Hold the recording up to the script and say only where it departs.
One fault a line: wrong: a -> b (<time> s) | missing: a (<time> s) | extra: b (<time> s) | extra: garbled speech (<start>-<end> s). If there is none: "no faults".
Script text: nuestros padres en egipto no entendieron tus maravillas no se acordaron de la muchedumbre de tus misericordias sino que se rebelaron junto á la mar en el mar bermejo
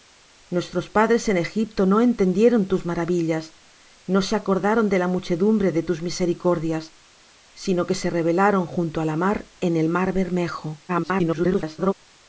extra: garbled speech (10.9-11.9 s)